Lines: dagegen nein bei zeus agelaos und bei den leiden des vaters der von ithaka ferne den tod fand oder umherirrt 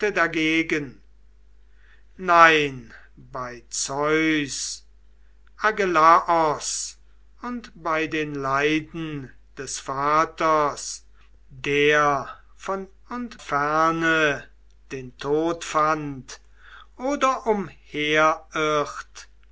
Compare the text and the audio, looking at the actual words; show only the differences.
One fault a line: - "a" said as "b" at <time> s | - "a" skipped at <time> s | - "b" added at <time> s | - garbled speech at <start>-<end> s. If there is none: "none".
- "ithaka" said as "und" at 13.1 s